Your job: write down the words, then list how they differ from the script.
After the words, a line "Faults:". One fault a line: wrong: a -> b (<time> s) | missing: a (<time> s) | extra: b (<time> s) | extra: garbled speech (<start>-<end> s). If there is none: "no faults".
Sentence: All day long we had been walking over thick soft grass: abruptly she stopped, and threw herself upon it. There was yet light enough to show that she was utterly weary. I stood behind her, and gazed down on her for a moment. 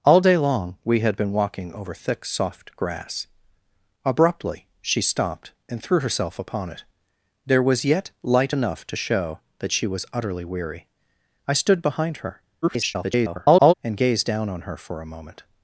All day long we had been walking over thick soft grass: abruptly she stopped, and threw herself upon it. There was yet light enough to show that she was utterly weary. I stood behind her, [garbled] and gazed down on her for a moment.
Faults:
extra: garbled speech (12.6-13.7 s)